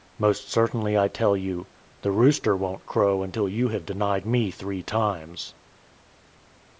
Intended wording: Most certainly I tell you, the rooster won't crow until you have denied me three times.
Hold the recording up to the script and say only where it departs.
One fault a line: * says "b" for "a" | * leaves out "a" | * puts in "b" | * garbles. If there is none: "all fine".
all fine